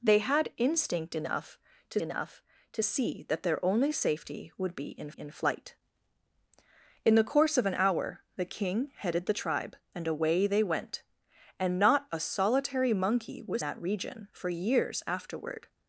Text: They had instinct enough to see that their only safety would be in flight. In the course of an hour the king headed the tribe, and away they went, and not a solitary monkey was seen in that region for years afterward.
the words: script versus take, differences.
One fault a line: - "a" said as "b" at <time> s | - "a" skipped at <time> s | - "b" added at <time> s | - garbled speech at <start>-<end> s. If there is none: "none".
- "enough to" added at 2.0 s
- "in" added at 5.1 s
- "seen in" skipped at 13.6 s